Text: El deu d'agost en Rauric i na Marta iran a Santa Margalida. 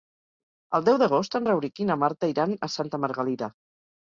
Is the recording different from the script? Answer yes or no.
no